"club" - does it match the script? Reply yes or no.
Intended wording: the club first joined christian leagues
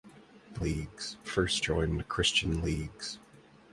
no